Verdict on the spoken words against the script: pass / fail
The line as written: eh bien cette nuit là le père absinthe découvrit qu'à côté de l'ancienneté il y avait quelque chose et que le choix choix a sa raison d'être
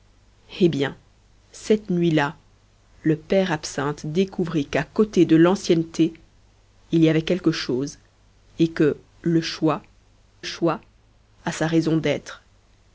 pass